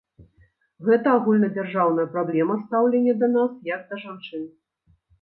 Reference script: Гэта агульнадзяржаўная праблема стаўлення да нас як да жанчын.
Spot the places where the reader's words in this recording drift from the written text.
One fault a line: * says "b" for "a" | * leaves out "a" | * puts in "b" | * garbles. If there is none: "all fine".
all fine